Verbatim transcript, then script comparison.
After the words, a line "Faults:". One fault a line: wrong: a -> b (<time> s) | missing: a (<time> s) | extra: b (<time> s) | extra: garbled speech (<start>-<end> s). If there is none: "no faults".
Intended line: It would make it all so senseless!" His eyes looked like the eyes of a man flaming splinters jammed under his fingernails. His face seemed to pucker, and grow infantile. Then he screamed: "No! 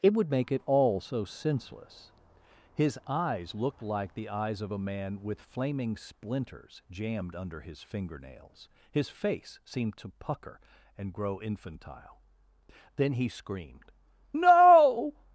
It would make it all so senseless!" His eyes looked like the eyes of a man with flaming splinters jammed under his fingernails. His face seemed to pucker, and grow infantile. Then he screamed: "No!
Faults:
extra: with (5.2 s)